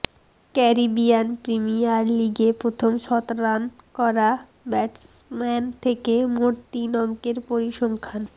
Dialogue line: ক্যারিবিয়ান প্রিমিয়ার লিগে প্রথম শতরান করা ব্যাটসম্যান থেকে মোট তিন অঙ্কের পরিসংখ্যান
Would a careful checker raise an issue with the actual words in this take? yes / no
no